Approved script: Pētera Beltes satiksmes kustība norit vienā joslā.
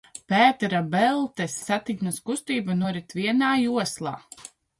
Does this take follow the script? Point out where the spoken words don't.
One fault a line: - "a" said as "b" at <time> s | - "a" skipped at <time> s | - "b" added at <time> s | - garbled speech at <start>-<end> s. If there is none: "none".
none